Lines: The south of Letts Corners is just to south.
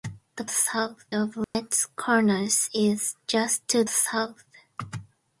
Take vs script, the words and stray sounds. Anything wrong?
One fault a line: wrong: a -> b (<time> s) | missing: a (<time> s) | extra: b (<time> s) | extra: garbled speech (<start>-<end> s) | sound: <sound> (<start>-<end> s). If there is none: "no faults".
sound: dropout (1.4-1.5 s)